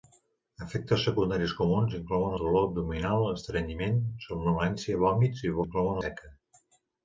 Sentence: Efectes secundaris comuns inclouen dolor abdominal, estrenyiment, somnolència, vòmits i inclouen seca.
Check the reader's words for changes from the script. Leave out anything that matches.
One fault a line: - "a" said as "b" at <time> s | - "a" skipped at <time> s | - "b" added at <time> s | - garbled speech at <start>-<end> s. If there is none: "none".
none